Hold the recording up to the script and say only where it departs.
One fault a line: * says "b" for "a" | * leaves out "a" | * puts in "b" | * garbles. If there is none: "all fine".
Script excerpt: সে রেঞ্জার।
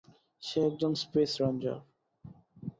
* puts in "একজন স্পেস"